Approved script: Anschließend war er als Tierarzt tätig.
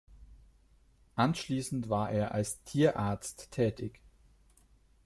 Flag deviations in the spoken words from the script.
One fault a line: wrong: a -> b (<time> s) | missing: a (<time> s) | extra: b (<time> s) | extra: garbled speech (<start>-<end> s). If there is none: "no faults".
no faults